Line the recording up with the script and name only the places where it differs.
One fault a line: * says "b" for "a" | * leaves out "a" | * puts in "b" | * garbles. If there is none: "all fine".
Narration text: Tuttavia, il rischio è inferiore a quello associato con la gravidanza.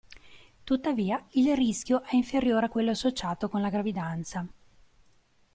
all fine